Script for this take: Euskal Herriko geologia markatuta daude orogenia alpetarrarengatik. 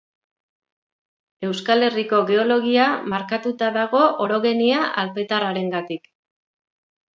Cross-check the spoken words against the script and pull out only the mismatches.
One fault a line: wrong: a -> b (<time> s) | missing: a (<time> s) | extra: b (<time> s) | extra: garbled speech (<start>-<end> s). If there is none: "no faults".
wrong: daude -> dago (3.8 s)